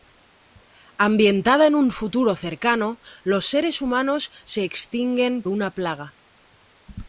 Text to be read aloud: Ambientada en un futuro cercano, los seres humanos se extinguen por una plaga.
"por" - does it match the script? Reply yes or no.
no